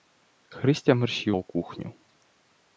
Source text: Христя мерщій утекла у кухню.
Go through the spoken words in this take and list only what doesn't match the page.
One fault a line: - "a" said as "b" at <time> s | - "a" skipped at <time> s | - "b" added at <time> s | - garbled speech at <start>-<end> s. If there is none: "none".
- "утекла" skipped at 1.3 s